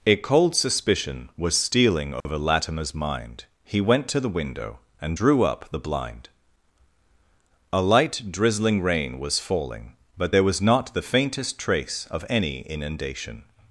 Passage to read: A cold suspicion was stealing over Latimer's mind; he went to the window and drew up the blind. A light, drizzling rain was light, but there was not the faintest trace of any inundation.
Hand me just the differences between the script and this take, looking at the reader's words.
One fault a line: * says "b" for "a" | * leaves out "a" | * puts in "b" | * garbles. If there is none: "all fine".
* says "falling" for "light"